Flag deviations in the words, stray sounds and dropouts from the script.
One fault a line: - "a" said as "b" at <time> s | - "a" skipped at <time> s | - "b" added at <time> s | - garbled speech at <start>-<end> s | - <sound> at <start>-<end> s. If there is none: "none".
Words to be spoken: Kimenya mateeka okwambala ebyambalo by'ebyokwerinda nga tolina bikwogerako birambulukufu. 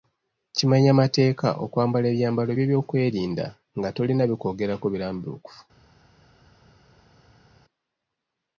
none